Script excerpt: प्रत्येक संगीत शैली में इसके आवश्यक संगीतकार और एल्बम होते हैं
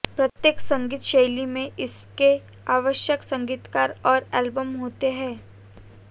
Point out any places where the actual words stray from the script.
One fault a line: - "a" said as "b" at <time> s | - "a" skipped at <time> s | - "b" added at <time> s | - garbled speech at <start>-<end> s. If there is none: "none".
none